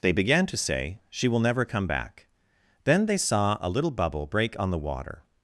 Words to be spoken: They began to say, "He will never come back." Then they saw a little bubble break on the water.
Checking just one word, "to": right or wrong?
right